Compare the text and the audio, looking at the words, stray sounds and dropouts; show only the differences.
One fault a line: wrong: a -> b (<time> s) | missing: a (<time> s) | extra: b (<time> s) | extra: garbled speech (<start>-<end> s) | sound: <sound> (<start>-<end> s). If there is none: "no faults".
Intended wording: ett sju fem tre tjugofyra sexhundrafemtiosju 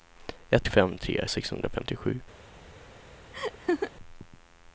missing: sju (0.7 s)
missing: tjugofyra (1.2 s)
sound: laugh (3.3-3.9 s)